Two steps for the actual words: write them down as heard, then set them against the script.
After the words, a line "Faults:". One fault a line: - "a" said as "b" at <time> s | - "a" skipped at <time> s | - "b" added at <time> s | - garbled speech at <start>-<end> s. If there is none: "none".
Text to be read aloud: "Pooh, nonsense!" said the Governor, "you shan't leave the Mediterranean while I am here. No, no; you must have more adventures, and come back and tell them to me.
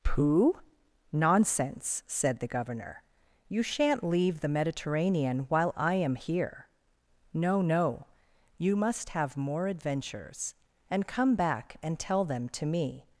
"Pooh, nonsense!" said the Governor, "you shan't leave the Mediterranean while I am here. No, no; you must have more adventures, and come back and tell them to me.
Faults:
none